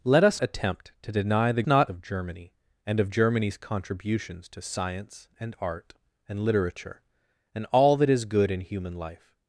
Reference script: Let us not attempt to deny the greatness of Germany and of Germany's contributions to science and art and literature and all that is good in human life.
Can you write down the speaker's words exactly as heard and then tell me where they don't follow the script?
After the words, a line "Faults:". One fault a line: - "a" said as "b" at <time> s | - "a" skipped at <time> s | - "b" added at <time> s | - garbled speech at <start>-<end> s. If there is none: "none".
Let us attempt to deny the not of Germany and of Germany's contributions to science and art and literature and all that is good in human life.
Faults:
- "not" skipped at 0.4 s
- "greatness" said as "not" at 1.6 s